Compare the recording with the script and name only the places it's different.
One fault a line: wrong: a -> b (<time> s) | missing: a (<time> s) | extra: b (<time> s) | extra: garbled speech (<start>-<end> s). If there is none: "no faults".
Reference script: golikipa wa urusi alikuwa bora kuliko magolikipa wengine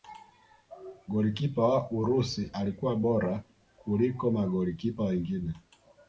no faults